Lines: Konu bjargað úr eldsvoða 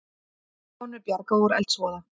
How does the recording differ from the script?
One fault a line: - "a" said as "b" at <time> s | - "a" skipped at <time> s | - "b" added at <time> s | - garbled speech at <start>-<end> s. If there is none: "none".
none